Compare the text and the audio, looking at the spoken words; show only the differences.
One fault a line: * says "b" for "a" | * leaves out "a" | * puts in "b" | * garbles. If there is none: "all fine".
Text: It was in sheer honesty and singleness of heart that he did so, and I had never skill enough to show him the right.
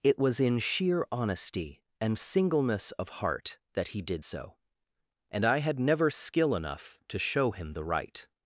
all fine